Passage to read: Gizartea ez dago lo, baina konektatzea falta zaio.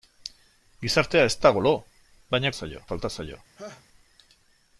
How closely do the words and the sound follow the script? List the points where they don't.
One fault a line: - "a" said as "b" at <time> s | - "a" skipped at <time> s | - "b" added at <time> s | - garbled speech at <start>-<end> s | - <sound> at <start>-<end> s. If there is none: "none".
- "konektatzea" said as "zaio" at 2.5 s
- laugh at 3.6-3.9 s